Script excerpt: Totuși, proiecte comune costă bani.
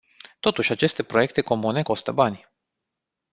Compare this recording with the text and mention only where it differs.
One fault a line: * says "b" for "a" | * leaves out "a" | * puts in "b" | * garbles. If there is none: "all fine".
* puts in "aceste"